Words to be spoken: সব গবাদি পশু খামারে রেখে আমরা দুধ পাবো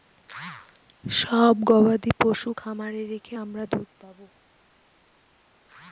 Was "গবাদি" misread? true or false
false